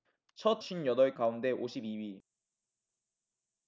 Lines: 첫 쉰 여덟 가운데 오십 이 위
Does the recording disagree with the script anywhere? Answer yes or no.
no